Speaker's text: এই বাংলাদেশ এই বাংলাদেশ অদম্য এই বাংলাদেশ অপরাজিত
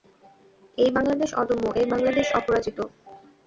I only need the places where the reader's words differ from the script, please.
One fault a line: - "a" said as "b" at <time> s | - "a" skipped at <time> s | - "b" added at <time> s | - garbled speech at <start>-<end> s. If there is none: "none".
- "এই বাংলাদেশ" skipped at 1.3 s